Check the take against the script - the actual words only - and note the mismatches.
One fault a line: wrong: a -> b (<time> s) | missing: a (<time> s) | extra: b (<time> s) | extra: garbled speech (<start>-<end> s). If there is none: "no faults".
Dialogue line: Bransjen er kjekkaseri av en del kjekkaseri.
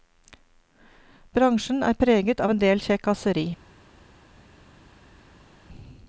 wrong: kjekkaseri -> preget (2.0 s)